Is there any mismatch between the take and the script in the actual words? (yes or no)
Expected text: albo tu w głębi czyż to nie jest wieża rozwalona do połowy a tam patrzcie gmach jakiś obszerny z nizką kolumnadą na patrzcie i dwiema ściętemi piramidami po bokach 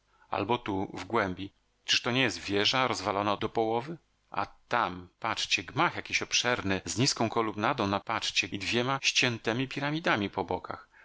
no